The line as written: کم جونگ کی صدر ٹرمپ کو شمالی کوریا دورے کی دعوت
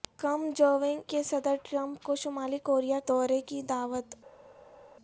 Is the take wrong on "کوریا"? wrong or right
right